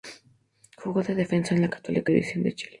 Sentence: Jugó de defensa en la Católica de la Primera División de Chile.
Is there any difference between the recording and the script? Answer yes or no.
yes